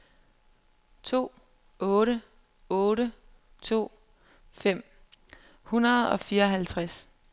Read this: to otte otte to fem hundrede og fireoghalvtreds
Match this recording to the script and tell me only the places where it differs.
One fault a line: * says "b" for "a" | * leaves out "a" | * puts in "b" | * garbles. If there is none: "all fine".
all fine